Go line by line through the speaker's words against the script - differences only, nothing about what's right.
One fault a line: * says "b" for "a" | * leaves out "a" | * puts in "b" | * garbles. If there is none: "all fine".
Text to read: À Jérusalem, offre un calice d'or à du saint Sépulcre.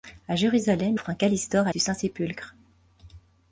all fine